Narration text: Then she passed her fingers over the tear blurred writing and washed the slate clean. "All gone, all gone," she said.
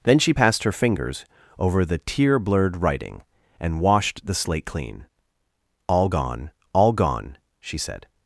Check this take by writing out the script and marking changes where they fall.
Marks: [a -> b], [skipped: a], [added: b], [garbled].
Then she passed her fingers over the tear blurred writing and washed the slate clean. "All gone, all gone," she said.